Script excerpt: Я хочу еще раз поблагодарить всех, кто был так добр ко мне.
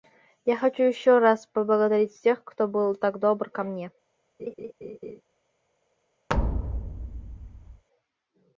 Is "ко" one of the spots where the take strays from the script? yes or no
no